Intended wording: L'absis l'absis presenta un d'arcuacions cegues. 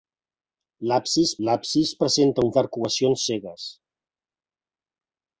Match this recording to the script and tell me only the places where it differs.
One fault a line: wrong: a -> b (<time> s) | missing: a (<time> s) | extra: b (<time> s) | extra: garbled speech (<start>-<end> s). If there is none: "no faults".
no faults